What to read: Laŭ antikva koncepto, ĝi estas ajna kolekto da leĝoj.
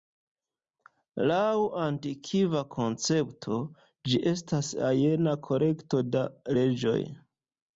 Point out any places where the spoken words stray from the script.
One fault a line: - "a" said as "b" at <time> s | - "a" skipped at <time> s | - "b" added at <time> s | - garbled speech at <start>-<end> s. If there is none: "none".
none